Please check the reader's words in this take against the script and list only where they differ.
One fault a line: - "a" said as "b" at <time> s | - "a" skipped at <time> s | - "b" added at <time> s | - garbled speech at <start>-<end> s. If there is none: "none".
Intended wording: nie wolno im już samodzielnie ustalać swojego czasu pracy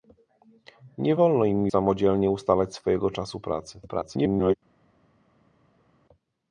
- "już" skipped at 1.7 s
- garbled speech at 3.9-4.5 s